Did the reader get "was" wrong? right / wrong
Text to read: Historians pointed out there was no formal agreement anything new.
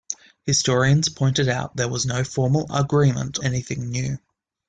right